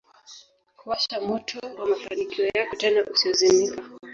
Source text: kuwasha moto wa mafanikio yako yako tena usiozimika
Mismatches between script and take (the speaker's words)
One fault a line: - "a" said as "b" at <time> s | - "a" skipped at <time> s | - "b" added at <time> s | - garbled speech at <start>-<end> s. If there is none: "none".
- "yako" skipped at 2.8 s